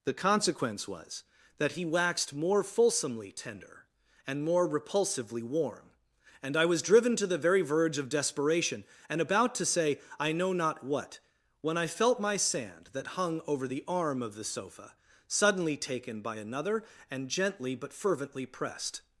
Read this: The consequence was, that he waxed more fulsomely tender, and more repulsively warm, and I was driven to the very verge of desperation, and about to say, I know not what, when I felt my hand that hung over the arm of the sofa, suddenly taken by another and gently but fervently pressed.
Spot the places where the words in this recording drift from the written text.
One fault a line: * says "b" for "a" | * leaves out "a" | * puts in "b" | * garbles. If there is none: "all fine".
* says "sand" for "hand"